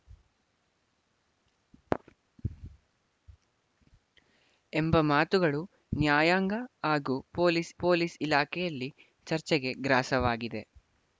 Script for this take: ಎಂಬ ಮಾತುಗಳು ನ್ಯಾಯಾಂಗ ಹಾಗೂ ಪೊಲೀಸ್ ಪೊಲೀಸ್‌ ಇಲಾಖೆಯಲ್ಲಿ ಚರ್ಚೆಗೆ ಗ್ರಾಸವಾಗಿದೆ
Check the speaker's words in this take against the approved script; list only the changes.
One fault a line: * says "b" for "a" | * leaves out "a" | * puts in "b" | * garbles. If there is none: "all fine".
all fine